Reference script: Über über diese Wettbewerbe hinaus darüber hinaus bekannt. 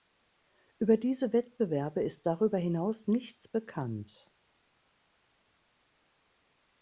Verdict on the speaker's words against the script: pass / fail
fail